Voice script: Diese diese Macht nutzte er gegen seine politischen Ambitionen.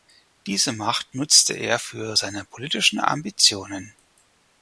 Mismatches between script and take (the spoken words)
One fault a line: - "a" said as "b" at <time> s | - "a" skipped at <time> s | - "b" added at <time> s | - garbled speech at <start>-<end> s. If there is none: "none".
- "diese" skipped at 0.7 s
- "gegen" said as "für" at 1.8 s